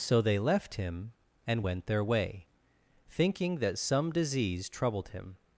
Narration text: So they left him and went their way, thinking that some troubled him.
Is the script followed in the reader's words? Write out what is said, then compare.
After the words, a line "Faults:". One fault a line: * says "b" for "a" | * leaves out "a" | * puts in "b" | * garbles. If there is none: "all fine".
So they left him and went their way, thinking that some disease troubled him.
Faults:
* puts in "disease"